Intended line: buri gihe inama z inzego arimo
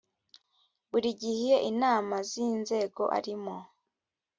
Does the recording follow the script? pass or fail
pass